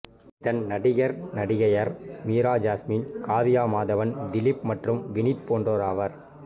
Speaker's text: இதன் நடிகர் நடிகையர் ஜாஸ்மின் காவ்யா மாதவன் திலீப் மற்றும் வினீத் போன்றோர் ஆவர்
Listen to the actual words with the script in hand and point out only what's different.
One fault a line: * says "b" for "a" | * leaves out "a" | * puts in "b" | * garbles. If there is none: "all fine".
* puts in "மீரா"